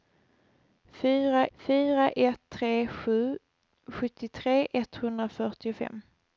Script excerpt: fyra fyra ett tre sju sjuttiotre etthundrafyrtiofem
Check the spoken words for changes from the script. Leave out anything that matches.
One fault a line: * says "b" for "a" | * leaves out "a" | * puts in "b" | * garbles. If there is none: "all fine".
all fine